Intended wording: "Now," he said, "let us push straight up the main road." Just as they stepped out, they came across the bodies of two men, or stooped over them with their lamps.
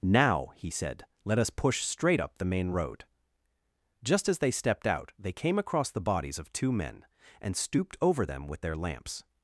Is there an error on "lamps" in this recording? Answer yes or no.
no